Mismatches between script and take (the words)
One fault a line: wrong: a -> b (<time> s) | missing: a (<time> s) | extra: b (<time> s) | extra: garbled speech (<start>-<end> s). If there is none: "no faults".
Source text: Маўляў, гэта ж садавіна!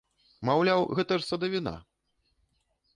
no faults